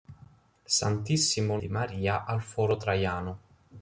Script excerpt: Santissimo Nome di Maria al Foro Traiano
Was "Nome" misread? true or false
true